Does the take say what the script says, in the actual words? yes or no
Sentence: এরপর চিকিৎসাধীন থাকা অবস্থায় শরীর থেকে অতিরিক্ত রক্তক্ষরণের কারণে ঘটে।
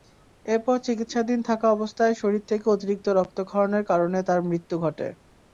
no